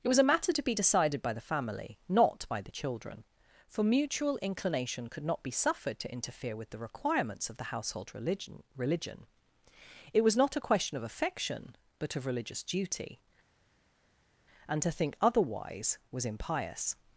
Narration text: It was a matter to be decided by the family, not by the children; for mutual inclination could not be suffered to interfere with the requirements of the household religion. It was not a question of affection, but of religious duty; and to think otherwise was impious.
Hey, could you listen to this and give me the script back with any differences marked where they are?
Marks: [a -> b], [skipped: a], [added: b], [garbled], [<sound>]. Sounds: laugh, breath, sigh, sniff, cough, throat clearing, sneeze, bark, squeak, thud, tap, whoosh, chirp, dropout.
It was a matter to be decided by the family, not by the children; for mutual inclination could not be suffered to interfere with the requirements of the household religion. [added: religion] It was not a question of affection, but of religious duty; and to think otherwise was impious.